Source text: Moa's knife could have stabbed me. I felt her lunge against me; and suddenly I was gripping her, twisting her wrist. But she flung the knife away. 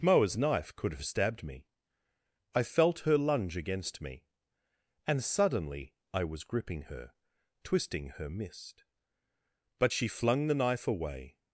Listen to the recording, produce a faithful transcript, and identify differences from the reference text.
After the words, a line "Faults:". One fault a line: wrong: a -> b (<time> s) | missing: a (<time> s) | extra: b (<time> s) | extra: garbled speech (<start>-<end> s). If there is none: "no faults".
Moa's knife could have stabbed me. I felt her lunge against me; and suddenly I was gripping her, twisting her mist. But she flung the knife away.
Faults:
wrong: wrist -> mist (8.3 s)